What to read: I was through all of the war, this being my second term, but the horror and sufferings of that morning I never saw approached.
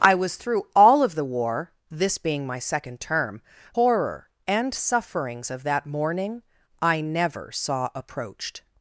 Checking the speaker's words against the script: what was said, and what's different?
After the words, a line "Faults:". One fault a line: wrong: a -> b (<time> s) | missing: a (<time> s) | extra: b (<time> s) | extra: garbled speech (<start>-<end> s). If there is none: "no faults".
I was through all of the war, this being my second term, horror and sufferings of that morning I never saw approached.
Faults:
missing: but the (3.4 s)